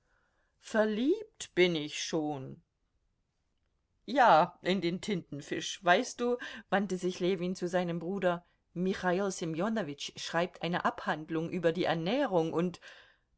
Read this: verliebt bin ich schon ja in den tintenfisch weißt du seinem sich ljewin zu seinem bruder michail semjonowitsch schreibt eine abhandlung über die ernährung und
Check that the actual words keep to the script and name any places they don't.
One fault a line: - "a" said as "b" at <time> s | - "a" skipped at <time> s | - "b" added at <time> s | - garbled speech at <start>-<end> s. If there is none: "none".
- "seinem" said as "wandte" at 6.7 s